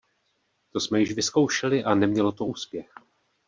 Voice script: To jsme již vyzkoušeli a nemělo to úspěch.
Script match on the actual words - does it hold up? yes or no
yes